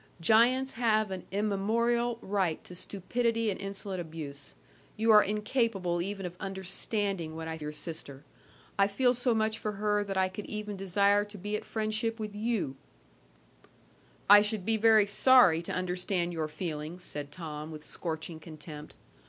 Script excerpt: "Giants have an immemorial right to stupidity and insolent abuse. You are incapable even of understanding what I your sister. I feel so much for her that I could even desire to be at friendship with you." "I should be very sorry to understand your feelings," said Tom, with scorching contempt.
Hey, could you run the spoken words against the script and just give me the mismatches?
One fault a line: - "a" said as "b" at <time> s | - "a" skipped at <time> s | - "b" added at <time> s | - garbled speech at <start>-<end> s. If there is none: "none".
none